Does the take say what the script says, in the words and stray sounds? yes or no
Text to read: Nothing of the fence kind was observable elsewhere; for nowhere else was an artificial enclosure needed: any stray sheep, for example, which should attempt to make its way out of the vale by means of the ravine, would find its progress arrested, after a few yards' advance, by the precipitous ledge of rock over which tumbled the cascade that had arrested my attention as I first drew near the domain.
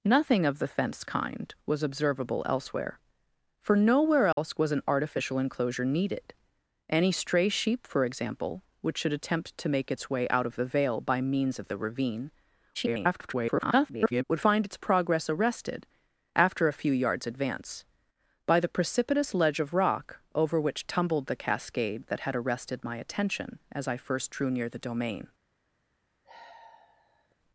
no